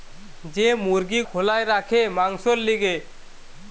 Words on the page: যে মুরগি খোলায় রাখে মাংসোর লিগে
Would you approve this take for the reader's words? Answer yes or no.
yes